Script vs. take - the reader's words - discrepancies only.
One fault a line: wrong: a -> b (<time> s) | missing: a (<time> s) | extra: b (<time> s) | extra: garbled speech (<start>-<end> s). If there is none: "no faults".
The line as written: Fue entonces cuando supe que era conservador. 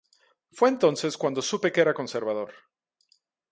no faults